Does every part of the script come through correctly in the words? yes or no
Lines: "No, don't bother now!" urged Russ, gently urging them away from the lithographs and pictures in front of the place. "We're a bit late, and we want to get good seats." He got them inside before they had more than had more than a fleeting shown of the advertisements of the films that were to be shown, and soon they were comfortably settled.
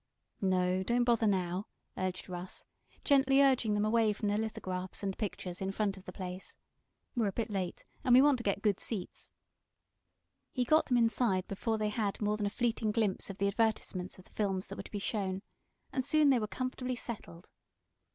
no